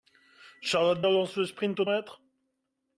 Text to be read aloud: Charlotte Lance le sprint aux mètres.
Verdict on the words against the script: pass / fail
pass